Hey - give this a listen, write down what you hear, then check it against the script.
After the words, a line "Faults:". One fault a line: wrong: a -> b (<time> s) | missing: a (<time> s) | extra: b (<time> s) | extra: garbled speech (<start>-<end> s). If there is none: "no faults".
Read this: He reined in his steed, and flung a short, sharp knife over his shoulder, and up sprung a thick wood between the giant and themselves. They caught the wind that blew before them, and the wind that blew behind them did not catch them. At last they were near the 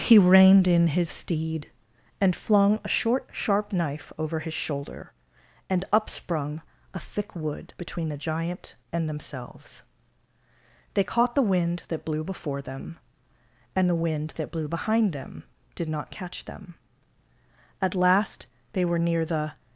He reined in his steed, and flung a short, sharp knife over his shoulder, and up sprung a thick wood between the giant and themselves. They caught the wind that blew before them, and the wind that blew behind them did not catch them. At last they were near the
Faults:
no faults